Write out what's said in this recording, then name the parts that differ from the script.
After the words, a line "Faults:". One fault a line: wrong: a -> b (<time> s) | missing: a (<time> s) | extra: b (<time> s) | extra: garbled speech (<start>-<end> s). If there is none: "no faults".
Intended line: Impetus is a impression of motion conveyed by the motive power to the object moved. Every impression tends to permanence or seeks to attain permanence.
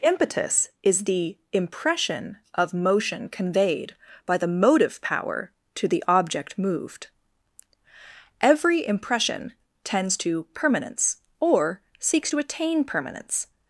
Impetus is the impression of motion conveyed by the motive power to the object moved. Every impression tends to permanence or seeks to attain permanence.
Faults:
wrong: a -> the (1.0 s)